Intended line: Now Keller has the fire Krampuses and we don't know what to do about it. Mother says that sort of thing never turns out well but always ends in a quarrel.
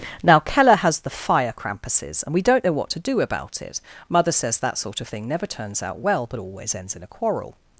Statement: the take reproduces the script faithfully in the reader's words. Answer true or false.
true